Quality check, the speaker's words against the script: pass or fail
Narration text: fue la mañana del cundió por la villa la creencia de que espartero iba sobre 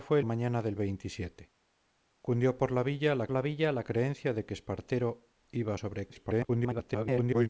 fail